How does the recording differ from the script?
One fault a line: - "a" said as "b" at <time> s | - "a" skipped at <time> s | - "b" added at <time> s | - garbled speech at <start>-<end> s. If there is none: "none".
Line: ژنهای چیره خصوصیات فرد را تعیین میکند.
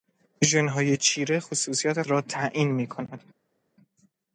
- "فرد" skipped at 2.0 s